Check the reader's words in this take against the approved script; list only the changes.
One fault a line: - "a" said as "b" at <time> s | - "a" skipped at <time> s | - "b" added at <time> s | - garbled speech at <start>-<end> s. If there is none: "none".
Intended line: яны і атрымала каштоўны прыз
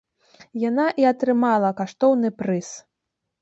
- "яны" said as "яна" at 0.7 s